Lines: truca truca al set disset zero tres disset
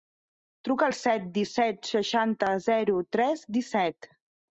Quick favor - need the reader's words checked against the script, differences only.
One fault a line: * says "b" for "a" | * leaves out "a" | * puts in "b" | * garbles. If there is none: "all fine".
* leaves out "truca"
* puts in "seixanta"